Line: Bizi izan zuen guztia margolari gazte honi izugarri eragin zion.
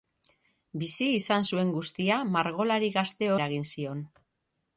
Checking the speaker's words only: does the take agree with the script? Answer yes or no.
no